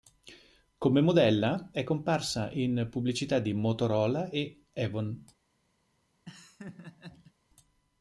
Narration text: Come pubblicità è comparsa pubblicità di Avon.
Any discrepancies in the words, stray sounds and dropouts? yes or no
yes